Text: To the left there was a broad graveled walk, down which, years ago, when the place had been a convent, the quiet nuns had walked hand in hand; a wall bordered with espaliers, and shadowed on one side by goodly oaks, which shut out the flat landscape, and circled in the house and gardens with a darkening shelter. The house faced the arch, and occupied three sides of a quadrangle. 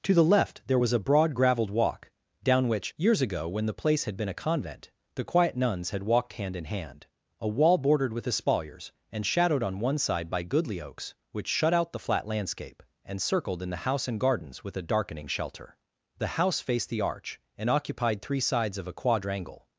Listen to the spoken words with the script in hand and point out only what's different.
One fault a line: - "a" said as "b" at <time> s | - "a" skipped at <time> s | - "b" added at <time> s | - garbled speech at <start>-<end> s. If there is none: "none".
none